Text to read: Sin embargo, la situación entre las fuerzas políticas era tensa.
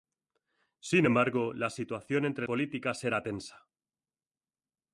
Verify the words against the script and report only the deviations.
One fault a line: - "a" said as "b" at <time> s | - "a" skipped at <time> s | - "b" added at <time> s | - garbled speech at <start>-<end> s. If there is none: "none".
- "las fuerzas" skipped at 2.5 s